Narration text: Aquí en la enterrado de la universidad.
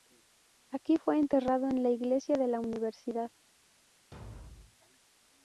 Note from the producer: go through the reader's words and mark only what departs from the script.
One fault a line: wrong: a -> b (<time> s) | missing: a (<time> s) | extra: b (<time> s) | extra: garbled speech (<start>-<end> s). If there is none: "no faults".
extra: fue enterrado (1.0 s)
wrong: enterrado -> iglesia (1.9 s)